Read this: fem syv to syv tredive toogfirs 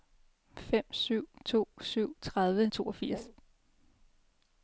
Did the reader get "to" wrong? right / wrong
right